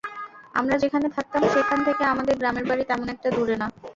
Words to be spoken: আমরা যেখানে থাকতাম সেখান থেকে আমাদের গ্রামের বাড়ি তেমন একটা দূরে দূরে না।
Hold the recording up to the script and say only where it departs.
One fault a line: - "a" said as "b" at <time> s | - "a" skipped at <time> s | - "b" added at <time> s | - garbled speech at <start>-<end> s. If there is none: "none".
- "দূরে" skipped at 3.5 s